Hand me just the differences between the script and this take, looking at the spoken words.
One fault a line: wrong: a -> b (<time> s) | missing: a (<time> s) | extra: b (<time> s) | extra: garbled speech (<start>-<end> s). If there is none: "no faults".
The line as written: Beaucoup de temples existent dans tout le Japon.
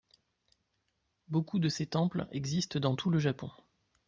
extra: ces (1.7 s)